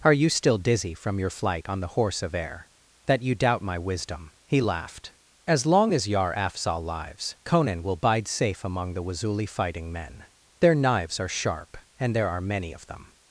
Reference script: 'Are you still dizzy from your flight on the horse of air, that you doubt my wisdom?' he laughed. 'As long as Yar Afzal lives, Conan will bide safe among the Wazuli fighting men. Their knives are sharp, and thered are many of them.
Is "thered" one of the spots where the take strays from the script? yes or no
yes